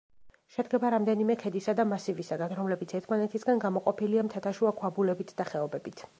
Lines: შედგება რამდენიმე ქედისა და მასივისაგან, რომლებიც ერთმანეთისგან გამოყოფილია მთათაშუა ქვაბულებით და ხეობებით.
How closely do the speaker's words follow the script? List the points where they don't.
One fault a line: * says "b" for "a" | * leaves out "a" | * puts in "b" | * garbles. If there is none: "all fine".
all fine